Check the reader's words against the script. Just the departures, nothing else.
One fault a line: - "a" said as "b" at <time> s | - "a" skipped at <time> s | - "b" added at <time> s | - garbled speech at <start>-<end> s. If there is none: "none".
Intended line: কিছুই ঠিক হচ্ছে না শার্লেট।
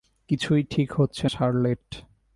- "না" skipped at 1.2 s